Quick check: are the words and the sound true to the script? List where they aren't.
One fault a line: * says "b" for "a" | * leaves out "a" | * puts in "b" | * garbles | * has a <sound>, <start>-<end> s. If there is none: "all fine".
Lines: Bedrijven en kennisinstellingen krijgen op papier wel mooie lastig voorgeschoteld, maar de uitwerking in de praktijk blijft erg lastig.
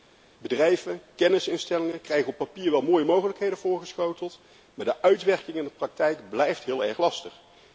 * says "mogelijkheden" for "lastig"
* puts in "heel"